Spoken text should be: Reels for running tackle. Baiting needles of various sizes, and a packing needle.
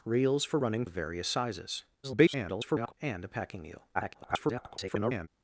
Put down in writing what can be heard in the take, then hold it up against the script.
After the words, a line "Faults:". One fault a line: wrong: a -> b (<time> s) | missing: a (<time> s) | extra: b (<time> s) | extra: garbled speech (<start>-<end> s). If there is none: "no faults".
Reels for running of various sizes, [garbled] and a packing needle. [garbled]
Faults:
missing: tackle Baiting needles (0.8 s)
extra: garbled speech (2.0-2.9 s)
extra: garbled speech (3.9-5.3 s)